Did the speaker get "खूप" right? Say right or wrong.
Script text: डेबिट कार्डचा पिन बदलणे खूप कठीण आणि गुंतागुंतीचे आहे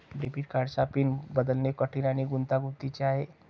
wrong